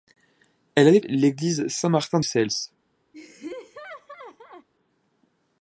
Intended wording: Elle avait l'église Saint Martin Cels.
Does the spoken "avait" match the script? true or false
true